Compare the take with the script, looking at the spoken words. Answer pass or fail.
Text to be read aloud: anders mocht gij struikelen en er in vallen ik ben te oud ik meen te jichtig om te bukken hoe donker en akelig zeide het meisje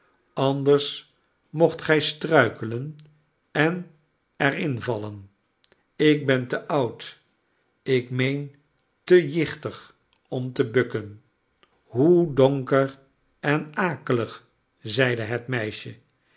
pass